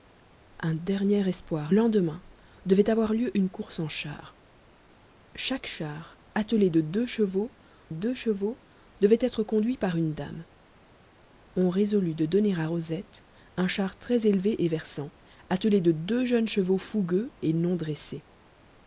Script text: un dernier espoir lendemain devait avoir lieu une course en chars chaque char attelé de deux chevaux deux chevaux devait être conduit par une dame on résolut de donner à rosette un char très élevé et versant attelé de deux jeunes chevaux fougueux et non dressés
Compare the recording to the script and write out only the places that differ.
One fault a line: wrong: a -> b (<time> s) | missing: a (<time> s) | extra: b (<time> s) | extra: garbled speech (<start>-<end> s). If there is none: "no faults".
no faults